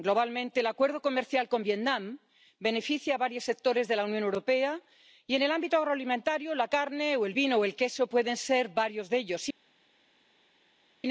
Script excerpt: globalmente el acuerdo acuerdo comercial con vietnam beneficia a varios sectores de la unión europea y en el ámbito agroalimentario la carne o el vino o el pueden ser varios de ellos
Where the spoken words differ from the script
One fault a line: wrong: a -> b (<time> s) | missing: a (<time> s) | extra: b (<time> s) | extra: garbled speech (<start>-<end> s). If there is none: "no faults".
missing: acuerdo (1.0 s)
extra: queso (7.7 s)